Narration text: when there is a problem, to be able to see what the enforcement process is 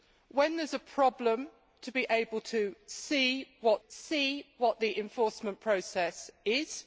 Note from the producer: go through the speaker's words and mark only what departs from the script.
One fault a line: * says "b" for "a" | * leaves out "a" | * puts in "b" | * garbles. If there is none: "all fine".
* puts in "see what"